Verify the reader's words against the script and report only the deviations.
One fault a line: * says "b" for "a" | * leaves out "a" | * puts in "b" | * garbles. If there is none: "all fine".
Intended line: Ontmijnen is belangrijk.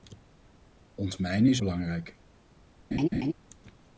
all fine